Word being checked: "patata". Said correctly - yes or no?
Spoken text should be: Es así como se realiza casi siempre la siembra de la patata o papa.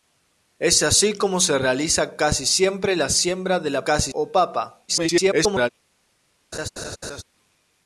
no